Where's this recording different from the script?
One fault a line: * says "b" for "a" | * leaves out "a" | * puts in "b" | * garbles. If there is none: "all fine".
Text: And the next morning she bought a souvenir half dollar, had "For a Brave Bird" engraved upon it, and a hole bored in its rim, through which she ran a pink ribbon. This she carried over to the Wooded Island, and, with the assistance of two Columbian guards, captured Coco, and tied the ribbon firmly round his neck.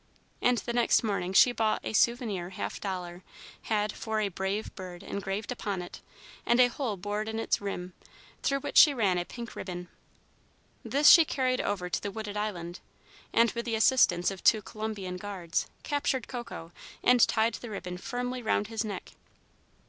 all fine